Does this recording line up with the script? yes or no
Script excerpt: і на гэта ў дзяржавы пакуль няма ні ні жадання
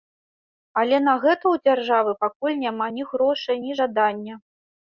no